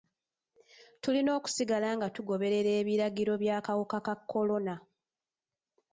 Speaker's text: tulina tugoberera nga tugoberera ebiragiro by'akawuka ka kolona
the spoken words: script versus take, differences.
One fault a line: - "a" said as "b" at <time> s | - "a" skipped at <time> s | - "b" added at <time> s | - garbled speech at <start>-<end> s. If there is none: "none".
- "tugoberera" said as "okusigala" at 1.4 s